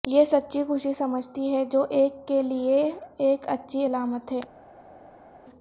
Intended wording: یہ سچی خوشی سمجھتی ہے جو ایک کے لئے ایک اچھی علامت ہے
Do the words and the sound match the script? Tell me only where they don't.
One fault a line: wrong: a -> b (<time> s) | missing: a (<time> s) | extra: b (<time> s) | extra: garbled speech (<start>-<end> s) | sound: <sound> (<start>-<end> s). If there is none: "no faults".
no faults